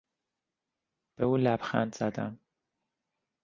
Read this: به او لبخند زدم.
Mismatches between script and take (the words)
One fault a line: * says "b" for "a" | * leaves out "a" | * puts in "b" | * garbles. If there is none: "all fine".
all fine